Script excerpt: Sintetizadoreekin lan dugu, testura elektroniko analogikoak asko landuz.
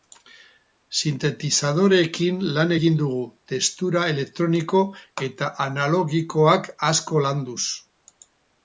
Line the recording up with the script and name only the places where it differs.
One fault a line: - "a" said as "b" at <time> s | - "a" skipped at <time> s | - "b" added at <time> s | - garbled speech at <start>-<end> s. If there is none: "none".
- "egin" added at 2.7 s
- "eta" added at 5.3 s